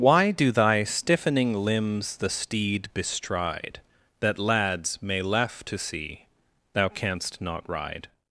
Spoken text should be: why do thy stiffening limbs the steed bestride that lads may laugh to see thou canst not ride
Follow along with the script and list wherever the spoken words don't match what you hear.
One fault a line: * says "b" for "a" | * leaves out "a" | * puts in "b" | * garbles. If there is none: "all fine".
all fine